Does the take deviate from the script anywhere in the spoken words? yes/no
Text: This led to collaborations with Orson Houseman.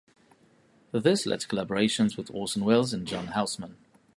yes